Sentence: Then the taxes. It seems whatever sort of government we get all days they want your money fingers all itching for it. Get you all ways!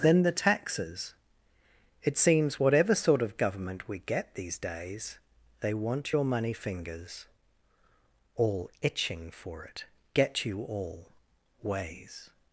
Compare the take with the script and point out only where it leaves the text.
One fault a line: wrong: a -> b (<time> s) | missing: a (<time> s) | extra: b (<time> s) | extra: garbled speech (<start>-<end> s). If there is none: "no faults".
wrong: all -> these (4.3 s)